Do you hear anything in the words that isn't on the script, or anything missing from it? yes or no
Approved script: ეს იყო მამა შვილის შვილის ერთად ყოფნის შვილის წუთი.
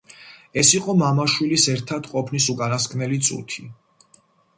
yes